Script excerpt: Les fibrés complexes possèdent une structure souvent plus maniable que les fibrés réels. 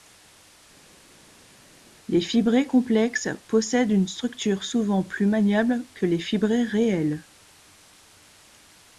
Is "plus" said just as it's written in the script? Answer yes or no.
yes